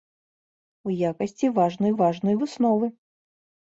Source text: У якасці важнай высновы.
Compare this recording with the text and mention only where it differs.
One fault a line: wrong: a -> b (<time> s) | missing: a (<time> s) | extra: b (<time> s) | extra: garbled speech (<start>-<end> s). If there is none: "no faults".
extra: важнай (2.0 s)